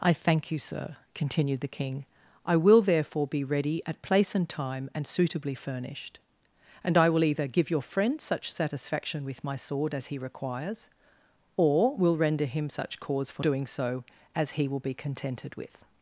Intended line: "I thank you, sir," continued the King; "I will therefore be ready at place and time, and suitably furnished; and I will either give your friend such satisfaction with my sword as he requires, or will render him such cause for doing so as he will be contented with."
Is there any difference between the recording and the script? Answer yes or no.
no